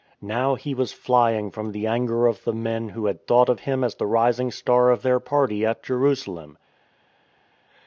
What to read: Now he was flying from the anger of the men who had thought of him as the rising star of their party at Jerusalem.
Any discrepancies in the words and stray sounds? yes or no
no